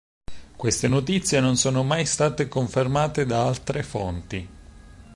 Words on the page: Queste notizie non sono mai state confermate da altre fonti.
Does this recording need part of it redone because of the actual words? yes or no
no